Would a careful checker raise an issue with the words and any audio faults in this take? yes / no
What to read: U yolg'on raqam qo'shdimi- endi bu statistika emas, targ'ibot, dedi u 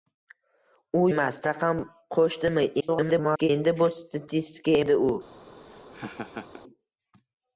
yes